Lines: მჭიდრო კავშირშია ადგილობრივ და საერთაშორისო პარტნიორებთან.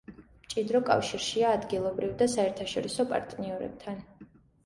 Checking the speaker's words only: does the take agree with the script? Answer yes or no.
yes